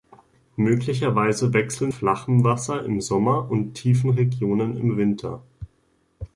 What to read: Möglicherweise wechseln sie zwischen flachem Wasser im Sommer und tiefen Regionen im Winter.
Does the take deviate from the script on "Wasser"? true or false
false